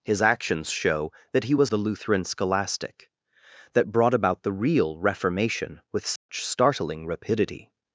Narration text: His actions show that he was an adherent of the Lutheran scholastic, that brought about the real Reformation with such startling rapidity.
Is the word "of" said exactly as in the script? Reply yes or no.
no